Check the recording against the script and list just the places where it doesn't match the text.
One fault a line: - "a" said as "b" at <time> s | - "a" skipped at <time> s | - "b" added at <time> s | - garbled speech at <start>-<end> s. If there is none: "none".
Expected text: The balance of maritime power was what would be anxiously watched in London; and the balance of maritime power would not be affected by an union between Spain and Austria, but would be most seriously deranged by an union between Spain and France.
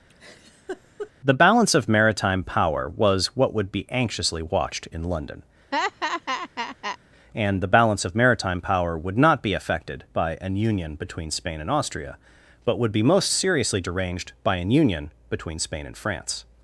none